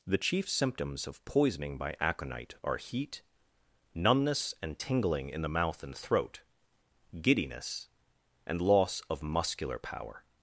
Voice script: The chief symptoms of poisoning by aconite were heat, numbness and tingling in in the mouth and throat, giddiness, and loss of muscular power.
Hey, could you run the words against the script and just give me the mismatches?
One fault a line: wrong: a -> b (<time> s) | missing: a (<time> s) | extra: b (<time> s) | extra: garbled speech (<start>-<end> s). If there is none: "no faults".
wrong: were -> are (2.6 s)
missing: in (5.4 s)